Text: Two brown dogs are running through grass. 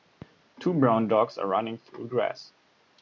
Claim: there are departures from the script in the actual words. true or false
false